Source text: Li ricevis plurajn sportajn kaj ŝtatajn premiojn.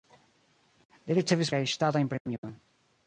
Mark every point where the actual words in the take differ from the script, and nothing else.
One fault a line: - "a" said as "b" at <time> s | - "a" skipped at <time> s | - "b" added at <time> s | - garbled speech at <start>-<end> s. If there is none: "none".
- "plurajn sportajn" skipped at 1.5 s